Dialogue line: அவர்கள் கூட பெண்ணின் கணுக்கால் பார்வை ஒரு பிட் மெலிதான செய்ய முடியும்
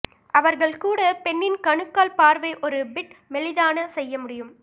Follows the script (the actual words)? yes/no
yes